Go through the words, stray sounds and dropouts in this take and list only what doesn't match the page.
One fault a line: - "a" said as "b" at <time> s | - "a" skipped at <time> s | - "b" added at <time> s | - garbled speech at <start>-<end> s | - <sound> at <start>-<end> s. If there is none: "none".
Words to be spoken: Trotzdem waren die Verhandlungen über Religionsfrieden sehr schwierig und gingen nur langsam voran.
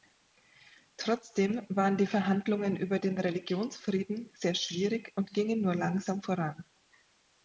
- "den" added at 3.0 s